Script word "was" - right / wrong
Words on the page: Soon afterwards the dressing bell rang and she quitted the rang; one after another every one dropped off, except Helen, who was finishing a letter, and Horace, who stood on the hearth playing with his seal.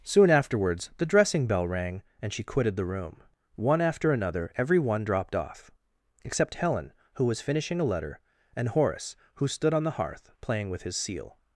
right